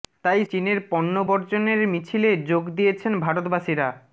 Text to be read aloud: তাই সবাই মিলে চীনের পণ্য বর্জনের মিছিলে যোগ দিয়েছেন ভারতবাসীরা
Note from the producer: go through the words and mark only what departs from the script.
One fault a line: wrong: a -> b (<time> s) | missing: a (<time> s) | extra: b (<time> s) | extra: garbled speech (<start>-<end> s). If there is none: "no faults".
missing: সবাই মিলে (0.4 s)